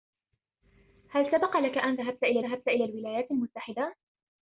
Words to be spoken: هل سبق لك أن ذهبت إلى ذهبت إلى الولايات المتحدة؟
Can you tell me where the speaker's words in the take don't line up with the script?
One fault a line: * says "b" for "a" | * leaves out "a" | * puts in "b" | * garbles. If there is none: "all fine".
all fine